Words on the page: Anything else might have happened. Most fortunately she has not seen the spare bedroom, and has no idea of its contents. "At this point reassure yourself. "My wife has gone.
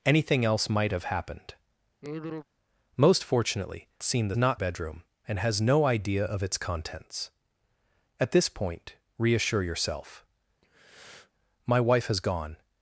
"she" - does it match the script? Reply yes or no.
no